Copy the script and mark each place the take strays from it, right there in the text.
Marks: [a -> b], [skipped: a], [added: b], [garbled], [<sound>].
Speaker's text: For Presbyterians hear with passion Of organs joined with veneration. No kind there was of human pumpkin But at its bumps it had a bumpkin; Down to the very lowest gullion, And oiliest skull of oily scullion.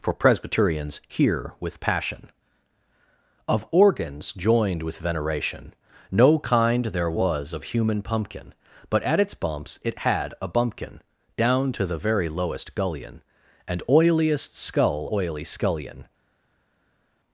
For Presbyterians hear with passion Of organs joined with veneration. No kind there was of human pumpkin But at its bumps it had a bumpkin; Down to the very lowest gullion, And oiliest skull [skipped: of] oily scullion.